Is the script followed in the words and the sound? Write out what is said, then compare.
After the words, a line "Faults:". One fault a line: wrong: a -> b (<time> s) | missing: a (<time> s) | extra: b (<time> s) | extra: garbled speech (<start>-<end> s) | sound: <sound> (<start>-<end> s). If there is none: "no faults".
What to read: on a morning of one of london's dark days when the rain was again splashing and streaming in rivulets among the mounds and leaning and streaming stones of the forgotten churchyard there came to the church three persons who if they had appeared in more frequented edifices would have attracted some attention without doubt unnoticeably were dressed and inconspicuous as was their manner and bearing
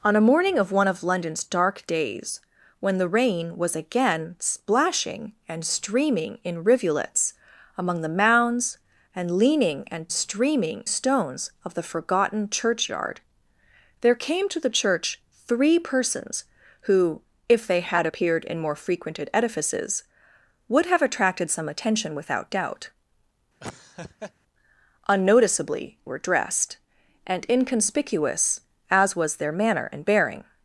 on a morning of one of london's dark days when the rain was again splashing and streaming in rivulets among the mounds and leaning and streaming stones of the forgotten churchyard there came to the church three persons who if they had appeared in more frequented edifices would have attracted some attention without doubt unnoticeably were dressed and inconspicuous as was their manner and bearing
Faults:
sound: laugh (23.6-24.3 s)